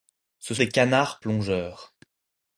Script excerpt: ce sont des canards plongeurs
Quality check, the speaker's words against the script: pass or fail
fail